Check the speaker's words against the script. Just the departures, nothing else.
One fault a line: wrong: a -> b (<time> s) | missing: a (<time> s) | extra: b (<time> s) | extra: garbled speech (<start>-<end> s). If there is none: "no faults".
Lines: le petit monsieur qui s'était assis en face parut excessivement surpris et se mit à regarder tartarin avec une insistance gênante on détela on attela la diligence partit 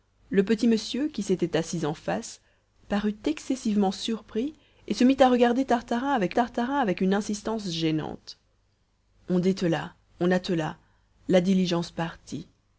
extra: tartarin avec (6.3 s)